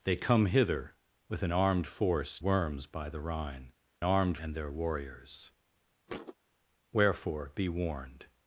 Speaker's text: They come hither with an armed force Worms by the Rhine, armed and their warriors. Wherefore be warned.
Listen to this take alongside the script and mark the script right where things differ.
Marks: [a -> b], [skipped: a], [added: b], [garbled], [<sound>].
They come hither with an armed force Worms by the Rhine, armed and their warriors. [thud] Wherefore be warned.